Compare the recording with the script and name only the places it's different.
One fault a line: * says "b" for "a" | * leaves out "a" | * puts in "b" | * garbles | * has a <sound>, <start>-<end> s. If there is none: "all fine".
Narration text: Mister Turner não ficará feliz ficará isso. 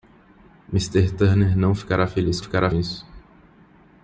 all fine